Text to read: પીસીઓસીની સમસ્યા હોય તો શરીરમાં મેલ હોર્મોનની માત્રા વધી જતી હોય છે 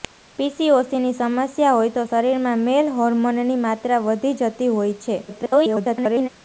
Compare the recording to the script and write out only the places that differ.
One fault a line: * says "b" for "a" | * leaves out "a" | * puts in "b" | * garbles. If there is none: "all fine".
* garbles